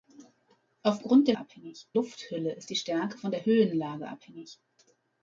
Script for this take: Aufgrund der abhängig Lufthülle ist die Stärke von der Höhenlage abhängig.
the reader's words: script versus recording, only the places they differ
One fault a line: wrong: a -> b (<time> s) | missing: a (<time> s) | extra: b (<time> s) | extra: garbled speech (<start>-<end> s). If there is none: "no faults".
no faults